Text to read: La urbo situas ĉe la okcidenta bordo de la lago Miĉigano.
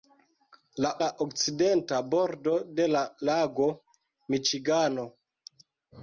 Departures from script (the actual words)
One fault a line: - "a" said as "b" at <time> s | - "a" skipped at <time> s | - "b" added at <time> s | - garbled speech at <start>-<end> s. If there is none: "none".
- "urbo situas ĉe" skipped at 0.9 s